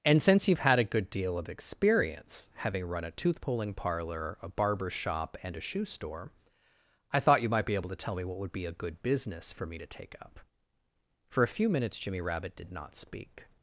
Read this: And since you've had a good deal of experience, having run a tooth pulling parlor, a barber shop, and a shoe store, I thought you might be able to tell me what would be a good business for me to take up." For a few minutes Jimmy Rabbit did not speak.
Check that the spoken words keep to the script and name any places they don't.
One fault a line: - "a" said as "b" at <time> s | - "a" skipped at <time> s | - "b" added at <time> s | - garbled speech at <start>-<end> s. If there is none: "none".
none